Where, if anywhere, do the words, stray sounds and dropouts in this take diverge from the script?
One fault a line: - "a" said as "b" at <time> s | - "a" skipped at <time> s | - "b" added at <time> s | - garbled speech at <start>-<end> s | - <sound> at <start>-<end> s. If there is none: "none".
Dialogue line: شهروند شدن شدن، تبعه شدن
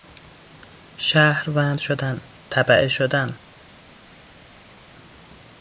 - "شدن" skipped at 2.2 s